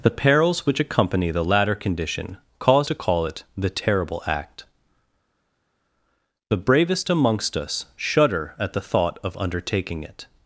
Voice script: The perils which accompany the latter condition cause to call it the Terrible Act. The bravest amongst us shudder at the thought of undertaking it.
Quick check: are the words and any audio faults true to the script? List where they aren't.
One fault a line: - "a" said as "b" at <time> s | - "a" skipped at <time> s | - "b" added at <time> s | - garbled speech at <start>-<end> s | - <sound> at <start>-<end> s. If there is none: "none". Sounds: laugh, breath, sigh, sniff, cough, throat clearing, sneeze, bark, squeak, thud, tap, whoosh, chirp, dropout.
none